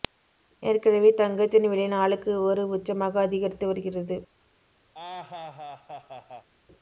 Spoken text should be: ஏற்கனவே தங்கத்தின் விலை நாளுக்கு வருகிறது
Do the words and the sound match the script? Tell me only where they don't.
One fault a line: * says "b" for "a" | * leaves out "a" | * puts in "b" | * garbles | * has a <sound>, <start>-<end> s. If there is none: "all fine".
* puts in "ஒரு உச்சமாக அதிகரித்து"
* has a laugh, 4.9-6.5 s